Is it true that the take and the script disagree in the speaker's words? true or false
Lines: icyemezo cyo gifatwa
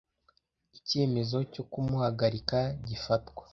true